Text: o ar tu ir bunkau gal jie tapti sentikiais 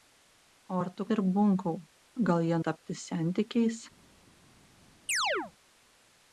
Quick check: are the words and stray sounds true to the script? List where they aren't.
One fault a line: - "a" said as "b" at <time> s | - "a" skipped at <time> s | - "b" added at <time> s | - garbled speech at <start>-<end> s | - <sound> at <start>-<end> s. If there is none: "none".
- chirp at 5.1-5.5 s